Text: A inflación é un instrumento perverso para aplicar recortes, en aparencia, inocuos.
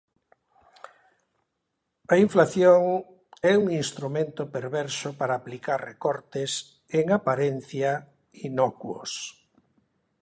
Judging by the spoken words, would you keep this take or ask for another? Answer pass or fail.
pass